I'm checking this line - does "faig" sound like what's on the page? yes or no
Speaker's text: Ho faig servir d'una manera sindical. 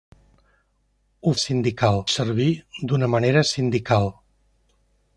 no